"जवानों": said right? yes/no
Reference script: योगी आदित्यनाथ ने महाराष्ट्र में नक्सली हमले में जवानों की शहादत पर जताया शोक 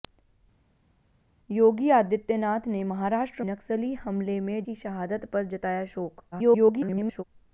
no